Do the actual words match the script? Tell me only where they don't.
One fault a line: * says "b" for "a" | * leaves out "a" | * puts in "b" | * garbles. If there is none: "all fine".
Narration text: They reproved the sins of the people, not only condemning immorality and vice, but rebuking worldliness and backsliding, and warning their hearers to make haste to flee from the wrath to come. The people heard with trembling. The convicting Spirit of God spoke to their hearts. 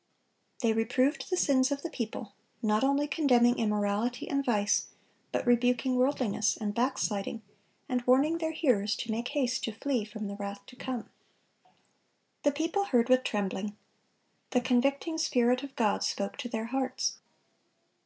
all fine